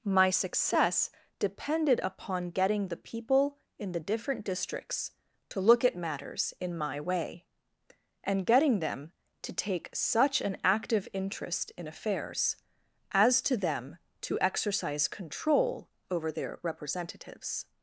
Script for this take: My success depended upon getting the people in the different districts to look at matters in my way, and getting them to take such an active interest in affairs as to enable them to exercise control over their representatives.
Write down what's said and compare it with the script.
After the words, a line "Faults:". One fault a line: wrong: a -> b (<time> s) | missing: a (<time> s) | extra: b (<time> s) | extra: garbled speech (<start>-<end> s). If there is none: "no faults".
My success depended upon getting the people in the different districts to look at matters in my way, and getting them to take such an active interest in affairs as to them to exercise control over their representatives.
Faults:
missing: enable (13.6 s)